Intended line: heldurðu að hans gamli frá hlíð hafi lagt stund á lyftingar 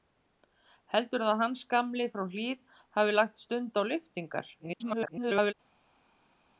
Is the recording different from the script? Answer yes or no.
yes